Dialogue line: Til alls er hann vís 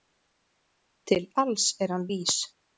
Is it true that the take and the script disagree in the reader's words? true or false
false